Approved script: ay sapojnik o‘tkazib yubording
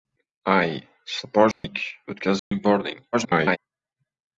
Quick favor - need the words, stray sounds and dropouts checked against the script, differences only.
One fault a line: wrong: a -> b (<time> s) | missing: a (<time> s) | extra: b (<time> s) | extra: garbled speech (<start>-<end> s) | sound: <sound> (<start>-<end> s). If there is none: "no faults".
sound: dropout (1.5-1.6 s)
sound: dropout (2.4-2.5 s)
extra: garbled speech (3.1-3.6 s)